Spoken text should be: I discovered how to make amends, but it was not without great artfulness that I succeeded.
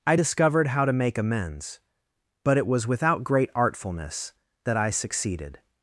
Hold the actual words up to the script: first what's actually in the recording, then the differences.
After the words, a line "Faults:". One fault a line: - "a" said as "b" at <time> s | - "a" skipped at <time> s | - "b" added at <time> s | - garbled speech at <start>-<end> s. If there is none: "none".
I discovered how to make amends, but it was without great artfulness that I succeeded.
Faults:
- "not" skipped at 2.9 s